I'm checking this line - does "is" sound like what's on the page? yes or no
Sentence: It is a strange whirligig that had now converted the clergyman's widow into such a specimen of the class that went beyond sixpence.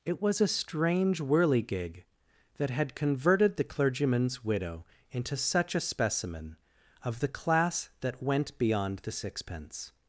no